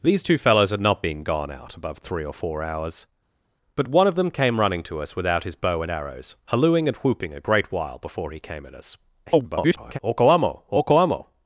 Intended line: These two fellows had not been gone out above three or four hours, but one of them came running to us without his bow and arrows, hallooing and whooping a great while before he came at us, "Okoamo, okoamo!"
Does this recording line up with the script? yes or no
no